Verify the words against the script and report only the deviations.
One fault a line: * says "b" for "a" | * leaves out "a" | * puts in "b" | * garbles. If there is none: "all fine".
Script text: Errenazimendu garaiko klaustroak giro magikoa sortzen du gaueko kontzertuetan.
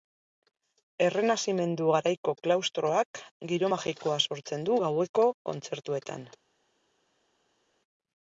all fine